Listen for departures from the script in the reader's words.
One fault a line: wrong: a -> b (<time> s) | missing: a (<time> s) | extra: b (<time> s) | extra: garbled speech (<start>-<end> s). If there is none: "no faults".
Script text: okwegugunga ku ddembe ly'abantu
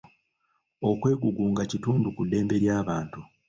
extra: kitundu (1.7 s)